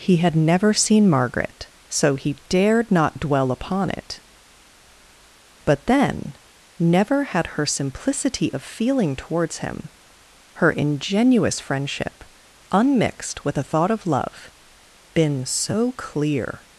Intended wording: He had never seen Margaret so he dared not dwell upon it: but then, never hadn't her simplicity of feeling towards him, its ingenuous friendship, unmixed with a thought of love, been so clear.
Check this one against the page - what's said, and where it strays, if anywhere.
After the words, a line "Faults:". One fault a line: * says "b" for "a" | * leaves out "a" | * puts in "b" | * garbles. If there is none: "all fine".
He had never seen Margaret so he dared not dwell upon it: but then, never had her simplicity of feeling towards him, her ingenuous friendship, unmixed with a thought of love, been so clear.
Faults:
* says "had" for "hadn't"
* says "her" for "its"